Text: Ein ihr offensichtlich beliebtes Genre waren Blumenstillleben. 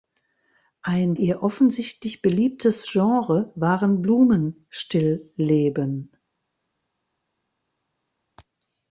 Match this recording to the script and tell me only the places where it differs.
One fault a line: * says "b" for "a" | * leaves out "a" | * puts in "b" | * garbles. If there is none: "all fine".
all fine